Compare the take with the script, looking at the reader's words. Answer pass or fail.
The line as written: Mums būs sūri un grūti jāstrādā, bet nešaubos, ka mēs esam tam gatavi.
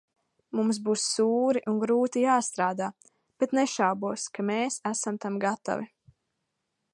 pass